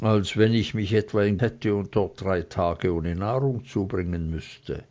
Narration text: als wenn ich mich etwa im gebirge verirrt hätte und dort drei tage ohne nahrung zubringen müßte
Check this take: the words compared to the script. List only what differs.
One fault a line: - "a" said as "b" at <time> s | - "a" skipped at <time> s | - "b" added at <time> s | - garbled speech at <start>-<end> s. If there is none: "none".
- "gebirge verirrt" skipped at 1.4 s